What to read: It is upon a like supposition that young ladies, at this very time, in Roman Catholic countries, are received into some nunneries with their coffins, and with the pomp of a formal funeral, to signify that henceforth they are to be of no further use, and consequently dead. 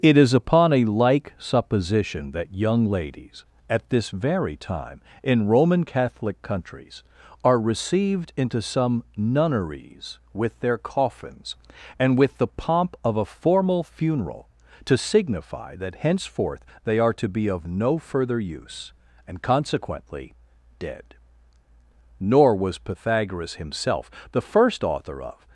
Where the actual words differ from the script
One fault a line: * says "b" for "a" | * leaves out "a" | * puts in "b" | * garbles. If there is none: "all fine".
* puts in "Nor was Pythagoras himself the first author of"